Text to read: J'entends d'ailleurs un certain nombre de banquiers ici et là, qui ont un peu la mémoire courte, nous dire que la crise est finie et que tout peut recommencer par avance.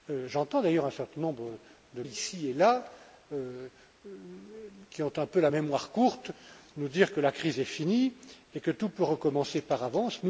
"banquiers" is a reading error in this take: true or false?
true